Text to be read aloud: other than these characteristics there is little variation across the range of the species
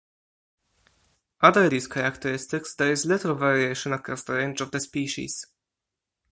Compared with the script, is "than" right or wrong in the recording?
wrong